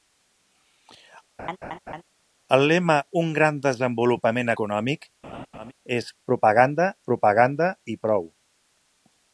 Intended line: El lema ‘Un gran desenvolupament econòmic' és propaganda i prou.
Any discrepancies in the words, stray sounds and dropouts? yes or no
yes